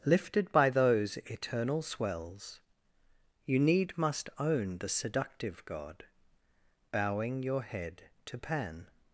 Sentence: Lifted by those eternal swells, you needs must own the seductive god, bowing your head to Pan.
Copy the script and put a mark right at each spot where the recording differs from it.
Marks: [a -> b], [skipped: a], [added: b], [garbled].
Lifted by those eternal swells, you [needs -> need] must own the seductive god, bowing your head to Pan.